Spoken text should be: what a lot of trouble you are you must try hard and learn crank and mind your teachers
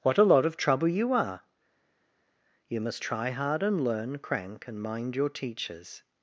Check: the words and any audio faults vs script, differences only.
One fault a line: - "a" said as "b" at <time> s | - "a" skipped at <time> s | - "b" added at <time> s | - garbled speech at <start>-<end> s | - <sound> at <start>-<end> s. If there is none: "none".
none